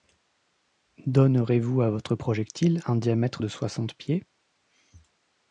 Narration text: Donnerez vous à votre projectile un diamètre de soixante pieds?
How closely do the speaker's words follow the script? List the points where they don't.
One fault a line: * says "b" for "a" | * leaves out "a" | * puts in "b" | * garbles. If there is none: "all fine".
all fine